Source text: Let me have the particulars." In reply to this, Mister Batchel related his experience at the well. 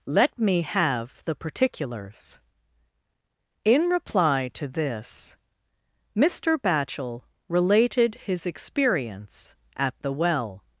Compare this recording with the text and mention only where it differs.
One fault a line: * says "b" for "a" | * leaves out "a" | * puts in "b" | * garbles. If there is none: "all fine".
all fine